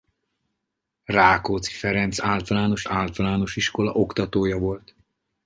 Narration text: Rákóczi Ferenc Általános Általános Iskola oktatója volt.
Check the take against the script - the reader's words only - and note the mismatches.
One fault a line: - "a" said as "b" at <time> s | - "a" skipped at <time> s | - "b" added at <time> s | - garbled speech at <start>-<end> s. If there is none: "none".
none